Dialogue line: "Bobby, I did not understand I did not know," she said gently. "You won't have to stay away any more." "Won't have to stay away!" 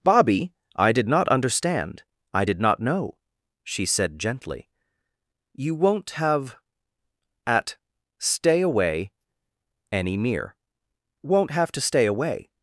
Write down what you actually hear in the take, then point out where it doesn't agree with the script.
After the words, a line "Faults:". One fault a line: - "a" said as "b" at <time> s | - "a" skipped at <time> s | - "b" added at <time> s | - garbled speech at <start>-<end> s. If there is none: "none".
"Bobby, I did not understand I did not know," she said gently. "You won't have at stay away any mere." "Won't have to stay away!"
Faults:
- "to" said as "at" at 7.5 s
- "more" said as "mere" at 10.2 s